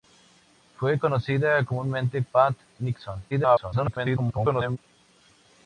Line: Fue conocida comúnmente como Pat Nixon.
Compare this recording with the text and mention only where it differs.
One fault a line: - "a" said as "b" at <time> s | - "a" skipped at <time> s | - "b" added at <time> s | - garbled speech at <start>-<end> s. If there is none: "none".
- "como" skipped at 2.2 s
- garbled speech at 3.3-4.8 s